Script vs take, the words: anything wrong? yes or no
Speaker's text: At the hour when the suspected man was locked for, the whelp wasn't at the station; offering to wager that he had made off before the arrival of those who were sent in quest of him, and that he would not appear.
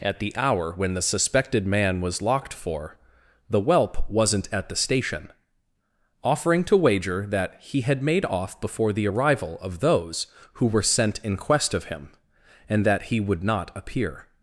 no